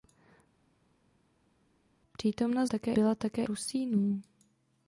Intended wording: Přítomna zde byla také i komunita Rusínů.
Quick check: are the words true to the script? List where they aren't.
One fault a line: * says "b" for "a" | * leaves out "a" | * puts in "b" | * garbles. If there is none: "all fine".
* says "také" for "zde"
* leaves out "i komunita"